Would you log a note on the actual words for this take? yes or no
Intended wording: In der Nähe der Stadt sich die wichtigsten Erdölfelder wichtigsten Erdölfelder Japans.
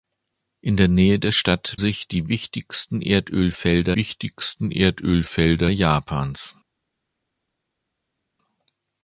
no